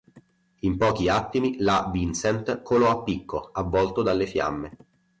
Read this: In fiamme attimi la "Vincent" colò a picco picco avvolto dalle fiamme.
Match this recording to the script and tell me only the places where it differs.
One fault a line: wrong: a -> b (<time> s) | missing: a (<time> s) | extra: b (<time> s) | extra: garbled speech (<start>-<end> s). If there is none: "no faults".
wrong: fiamme -> pochi (0.8 s)
missing: picco (3.5 s)